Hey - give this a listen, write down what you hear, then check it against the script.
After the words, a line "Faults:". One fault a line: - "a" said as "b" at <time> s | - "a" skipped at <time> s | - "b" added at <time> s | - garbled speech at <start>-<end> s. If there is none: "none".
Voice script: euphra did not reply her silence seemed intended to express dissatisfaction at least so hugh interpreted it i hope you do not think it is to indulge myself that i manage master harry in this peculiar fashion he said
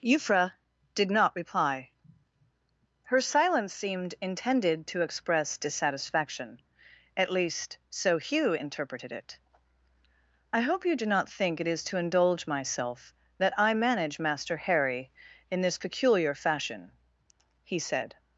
euphra did not reply her silence seemed intended to express dissatisfaction at least so hugh interpreted it i hope you do not think it is to indulge myself that i manage master harry in this peculiar fashion he said
Faults:
none